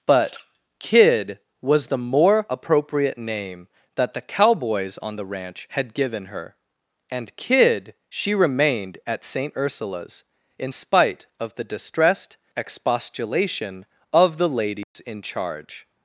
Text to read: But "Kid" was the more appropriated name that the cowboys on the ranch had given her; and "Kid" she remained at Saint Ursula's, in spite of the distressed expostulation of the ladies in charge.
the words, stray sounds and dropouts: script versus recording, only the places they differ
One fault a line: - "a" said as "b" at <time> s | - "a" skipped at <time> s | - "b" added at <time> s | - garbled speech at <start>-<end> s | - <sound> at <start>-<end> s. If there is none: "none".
- "appropriated" said as "appropriate" at 2.5 s
- dropout at 14.8-15.0 s